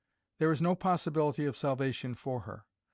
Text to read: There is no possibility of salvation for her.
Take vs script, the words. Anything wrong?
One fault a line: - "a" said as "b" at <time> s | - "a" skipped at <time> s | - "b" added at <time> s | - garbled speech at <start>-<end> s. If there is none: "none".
none